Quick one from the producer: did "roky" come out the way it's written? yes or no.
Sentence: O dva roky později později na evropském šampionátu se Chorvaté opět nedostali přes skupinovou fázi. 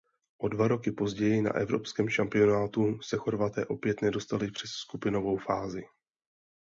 yes